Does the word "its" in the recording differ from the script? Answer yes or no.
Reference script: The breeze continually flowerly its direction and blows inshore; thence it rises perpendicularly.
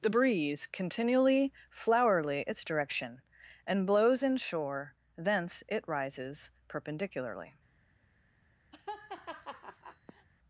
no